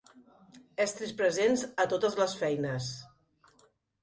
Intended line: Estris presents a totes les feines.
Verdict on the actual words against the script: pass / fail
pass